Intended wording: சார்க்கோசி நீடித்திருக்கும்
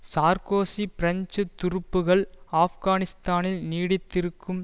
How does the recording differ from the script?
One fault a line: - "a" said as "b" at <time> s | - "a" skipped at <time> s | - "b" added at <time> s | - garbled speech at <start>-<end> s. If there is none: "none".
- "பிரெஞ்சு துருப்புக்கள் ஆப்கானிஸ்தானில்" added at 0.9 s